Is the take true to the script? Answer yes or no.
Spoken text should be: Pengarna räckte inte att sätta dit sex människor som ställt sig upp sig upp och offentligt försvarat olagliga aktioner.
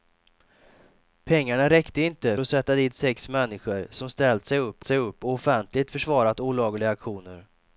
yes